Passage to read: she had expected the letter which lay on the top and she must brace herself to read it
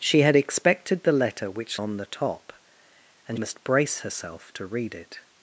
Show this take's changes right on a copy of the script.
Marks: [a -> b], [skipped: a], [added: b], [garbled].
she had expected the letter which [skipped: lay] on the top and [skipped: she] must brace herself to read it